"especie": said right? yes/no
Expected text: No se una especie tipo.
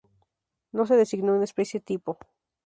yes